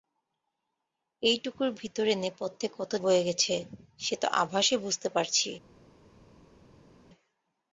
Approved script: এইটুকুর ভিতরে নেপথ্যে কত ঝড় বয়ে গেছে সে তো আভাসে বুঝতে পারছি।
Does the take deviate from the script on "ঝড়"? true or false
true